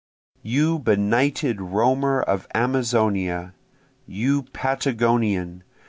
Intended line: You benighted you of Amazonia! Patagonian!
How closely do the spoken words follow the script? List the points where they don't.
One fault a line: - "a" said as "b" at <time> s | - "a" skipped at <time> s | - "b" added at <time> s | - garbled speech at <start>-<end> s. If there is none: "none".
- "you" said as "roamer" at 1.6 s
- "you" added at 4.1 s